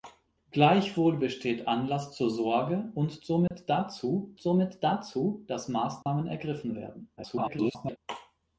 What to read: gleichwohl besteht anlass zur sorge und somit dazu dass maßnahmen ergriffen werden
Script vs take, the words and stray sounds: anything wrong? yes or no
yes